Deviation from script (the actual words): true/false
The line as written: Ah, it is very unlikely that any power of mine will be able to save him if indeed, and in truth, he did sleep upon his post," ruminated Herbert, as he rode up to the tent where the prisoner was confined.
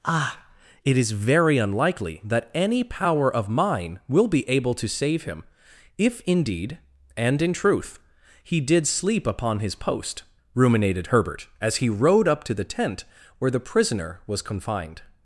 false